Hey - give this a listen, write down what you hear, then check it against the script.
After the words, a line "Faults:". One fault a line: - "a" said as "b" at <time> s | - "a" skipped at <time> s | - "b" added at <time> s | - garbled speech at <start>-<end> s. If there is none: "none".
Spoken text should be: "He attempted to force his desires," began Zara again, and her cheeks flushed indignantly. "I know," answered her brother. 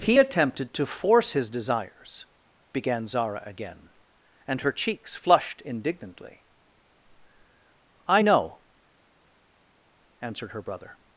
"He attempted to force his desires," began Zara again, and her cheeks flushed indignantly. "I know," answered her brother.
Faults:
none